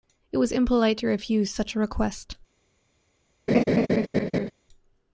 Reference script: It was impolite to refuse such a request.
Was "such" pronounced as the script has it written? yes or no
yes